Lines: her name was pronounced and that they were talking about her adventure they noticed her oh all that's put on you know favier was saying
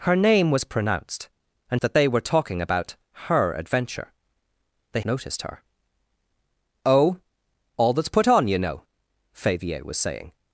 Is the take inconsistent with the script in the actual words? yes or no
no